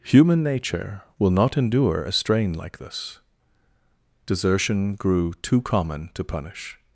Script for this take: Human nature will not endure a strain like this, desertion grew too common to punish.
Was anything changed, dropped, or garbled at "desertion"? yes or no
no